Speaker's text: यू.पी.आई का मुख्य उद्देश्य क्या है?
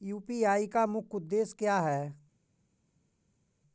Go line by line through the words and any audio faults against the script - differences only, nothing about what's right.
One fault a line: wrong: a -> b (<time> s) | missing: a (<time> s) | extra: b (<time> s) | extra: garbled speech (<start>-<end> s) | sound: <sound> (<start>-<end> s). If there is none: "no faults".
no faults